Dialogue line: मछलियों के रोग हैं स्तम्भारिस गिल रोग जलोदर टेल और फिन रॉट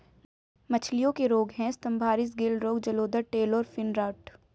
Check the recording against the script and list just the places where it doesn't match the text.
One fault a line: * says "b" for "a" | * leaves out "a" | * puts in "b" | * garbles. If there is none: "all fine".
all fine